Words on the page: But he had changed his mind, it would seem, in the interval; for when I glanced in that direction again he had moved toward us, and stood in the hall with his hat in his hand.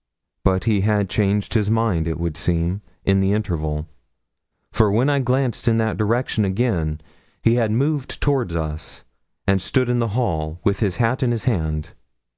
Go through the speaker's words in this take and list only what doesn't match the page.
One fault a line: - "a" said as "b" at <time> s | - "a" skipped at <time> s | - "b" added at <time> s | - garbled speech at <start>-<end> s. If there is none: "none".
none